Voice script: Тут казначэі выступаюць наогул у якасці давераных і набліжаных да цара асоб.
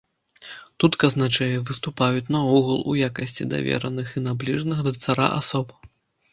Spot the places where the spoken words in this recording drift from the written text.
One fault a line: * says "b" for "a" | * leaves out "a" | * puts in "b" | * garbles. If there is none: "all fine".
all fine